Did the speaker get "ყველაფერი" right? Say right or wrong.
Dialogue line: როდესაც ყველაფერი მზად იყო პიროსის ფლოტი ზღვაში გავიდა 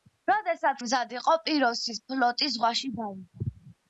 wrong